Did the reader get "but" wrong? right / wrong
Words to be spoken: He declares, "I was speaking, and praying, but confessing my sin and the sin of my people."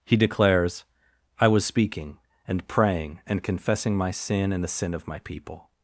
wrong